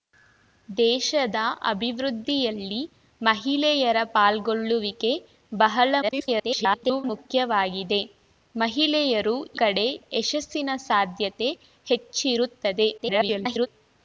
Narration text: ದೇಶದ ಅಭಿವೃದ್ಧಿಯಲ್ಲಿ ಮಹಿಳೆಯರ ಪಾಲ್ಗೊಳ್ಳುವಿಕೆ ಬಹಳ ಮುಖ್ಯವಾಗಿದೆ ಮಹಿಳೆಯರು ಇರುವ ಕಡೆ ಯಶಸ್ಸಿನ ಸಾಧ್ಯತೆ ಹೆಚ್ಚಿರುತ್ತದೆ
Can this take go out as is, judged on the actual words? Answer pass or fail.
fail